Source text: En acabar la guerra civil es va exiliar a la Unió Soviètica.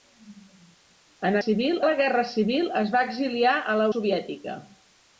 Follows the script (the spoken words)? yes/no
no